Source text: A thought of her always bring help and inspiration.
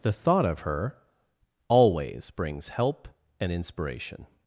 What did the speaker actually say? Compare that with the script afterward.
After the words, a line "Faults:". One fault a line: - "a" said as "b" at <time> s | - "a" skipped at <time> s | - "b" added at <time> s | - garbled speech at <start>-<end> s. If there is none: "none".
The thought of her always brings help and inspiration.
Faults:
- "A" said as "The" at 0.0 s
- "bring" said as "brings" at 2.3 s